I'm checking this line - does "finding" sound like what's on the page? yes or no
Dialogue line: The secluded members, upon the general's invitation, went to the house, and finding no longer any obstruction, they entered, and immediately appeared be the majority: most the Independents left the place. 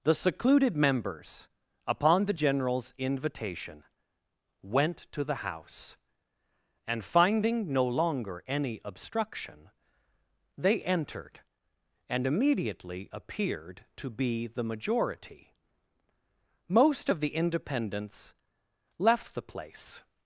yes